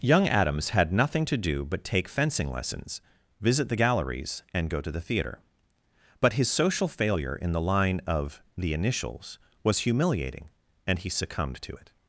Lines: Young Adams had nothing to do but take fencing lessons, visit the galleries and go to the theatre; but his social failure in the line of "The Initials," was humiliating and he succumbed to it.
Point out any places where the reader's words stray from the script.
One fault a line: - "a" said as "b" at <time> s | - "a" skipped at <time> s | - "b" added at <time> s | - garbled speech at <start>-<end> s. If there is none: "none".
none